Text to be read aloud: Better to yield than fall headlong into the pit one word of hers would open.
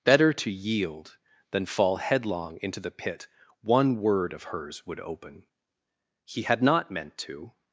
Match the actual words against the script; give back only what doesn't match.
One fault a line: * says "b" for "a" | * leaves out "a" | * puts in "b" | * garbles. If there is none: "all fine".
* puts in "He had not meant to"